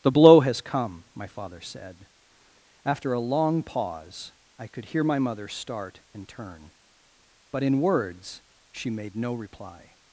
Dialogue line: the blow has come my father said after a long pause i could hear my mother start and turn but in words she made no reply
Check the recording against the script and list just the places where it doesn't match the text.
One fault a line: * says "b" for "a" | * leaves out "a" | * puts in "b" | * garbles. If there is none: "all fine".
all fine